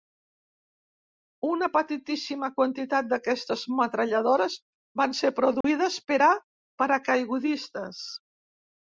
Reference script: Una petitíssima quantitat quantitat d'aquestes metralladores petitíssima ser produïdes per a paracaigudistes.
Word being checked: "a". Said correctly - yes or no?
yes